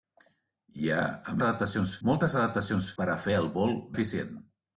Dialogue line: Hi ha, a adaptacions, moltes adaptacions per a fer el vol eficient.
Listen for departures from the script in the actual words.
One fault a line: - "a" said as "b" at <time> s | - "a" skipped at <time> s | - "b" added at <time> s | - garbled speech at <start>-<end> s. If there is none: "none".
none